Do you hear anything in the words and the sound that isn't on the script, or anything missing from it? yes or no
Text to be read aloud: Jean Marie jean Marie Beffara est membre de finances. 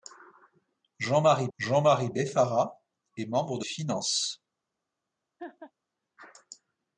yes